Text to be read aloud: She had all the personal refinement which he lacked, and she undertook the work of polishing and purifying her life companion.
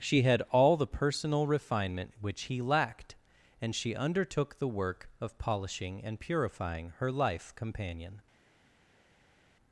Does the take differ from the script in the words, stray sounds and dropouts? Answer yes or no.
no